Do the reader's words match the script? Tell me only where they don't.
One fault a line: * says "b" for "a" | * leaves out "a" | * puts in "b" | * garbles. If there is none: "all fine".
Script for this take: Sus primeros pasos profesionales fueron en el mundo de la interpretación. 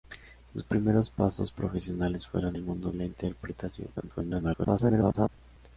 * leaves out "en"
* leaves out "de"
* garbles